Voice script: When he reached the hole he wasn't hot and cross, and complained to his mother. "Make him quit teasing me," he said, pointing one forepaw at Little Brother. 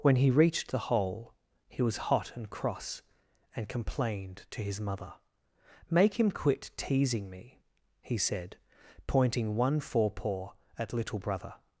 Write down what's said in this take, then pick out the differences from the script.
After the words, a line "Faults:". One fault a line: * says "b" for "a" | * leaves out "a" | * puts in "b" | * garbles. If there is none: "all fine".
When he reached the hole he was hot and cross, and complained to his mother. "Make him quit teasing me," he said, pointing one forepaw at Little Brother.
Faults:
* says "was" for "wasn't"